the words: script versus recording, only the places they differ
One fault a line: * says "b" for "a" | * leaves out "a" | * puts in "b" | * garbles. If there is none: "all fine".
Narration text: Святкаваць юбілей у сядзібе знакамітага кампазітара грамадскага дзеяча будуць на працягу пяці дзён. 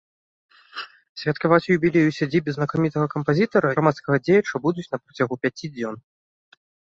all fine